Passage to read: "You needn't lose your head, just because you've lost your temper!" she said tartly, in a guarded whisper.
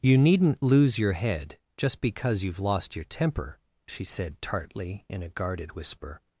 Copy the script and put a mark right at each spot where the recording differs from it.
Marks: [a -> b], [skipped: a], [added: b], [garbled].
"You needn't lose your head, just because you've lost your temper!" she said tartly, in a guarded whisper.